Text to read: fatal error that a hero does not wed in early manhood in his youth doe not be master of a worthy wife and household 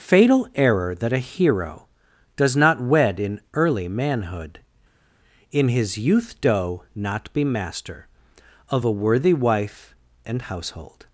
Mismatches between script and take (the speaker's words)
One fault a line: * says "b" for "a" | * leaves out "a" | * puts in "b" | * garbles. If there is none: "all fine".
all fine